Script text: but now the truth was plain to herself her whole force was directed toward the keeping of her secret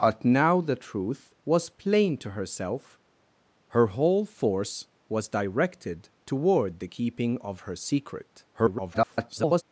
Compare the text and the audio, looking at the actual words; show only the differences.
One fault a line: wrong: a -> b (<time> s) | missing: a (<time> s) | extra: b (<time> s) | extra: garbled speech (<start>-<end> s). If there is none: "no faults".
extra: garbled speech (8.5-9.6 s)